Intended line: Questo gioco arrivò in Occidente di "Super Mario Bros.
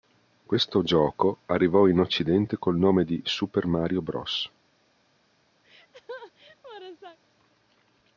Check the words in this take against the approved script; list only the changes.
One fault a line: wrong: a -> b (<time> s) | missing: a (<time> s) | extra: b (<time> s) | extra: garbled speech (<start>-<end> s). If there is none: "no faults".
extra: col nome (2.6 s)